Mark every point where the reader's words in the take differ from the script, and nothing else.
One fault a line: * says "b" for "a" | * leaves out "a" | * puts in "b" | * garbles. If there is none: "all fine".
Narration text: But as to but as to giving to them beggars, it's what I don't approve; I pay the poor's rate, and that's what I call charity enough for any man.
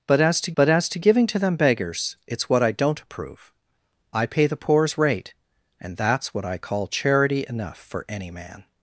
all fine